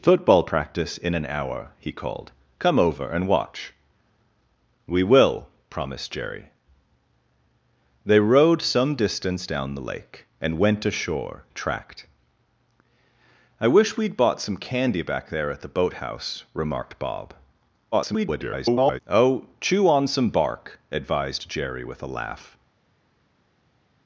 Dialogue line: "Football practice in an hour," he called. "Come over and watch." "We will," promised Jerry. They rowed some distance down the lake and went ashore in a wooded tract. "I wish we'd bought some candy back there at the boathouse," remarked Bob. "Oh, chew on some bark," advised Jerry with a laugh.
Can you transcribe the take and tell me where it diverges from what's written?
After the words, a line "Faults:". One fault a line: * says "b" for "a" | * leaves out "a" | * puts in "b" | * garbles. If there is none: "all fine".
"Football practice in an hour," he called. "Come over and watch." "We will," promised Jerry. They rowed some distance down the lake and went ashore tract. "I wish we'd bought some candy back there at the boathouse," remarked Bob. [garbled] "Oh, chew on some bark," advised Jerry with a laugh.
Faults:
* leaves out "in a wooded"
* garbles